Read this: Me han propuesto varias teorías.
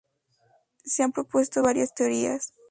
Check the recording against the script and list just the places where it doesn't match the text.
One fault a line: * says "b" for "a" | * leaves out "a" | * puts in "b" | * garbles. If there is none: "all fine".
* says "Se" for "Me"